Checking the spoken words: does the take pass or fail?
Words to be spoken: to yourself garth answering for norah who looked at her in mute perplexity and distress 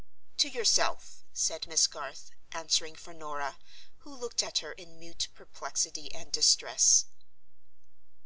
fail